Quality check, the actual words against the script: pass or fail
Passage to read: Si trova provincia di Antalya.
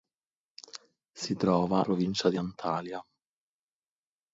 pass